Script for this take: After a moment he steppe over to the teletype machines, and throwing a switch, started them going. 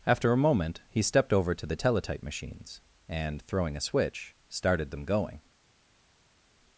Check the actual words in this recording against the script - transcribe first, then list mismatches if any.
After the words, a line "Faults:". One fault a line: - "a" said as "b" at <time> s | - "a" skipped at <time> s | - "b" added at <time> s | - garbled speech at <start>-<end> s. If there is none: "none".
After a moment he stepped over to the teletype machines, and throwing a switch, started them going.
Faults:
- "steppe" said as "stepped" at 1.0 s